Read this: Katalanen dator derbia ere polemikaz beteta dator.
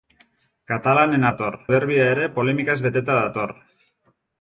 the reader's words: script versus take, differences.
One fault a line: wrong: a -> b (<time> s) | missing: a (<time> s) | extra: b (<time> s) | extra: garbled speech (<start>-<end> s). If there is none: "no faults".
no faults